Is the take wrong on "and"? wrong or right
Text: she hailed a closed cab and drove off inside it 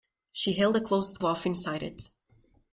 wrong